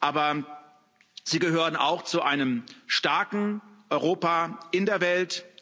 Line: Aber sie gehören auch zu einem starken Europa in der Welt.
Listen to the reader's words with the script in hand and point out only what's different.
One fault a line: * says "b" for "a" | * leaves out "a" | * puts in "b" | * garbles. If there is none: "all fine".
all fine